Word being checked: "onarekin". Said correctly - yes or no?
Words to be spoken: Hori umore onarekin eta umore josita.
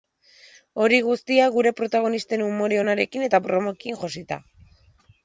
yes